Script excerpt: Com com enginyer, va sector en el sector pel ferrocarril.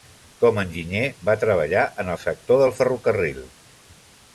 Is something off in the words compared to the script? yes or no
yes